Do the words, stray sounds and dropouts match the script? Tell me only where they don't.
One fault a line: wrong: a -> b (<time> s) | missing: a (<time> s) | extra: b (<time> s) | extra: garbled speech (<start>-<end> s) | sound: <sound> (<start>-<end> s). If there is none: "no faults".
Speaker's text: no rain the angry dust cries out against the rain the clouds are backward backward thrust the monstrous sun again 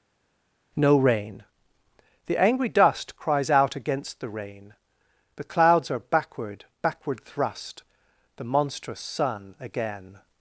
no faults